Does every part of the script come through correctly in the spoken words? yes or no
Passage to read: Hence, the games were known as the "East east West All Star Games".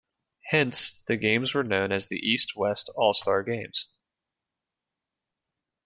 no